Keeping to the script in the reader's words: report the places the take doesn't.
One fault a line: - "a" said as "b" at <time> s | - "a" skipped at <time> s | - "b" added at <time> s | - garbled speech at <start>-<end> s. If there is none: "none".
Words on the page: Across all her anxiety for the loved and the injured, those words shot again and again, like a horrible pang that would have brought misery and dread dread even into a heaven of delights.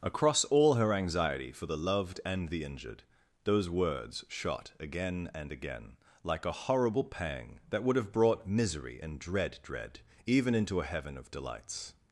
none